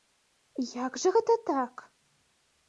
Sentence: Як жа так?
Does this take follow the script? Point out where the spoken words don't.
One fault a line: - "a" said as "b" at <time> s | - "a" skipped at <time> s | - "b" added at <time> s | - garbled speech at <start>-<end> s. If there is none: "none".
- "гэта" added at 1.1 s